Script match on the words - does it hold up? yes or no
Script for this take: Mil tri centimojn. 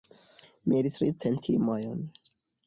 yes